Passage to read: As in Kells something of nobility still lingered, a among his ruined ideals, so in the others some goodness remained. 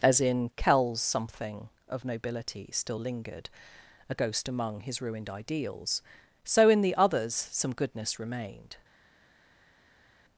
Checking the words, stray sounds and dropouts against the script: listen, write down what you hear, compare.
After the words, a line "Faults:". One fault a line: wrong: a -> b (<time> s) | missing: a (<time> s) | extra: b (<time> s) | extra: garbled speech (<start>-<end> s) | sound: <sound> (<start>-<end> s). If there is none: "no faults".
As in Kells something of nobility still lingered, a ghost among his ruined ideals, so in the others some goodness remained.
Faults:
extra: ghost (4.1 s)